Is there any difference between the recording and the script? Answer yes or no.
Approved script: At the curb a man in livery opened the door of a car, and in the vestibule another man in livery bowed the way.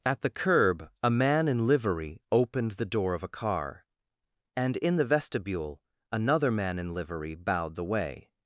no